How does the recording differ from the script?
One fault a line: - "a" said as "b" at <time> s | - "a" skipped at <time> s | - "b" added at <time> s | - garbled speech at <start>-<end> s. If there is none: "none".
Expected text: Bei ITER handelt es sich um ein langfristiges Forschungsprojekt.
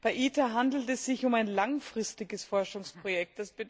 none